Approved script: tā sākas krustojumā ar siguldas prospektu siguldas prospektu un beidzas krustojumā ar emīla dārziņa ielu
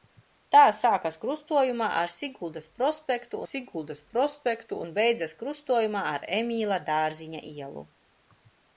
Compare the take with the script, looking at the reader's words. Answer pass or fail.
pass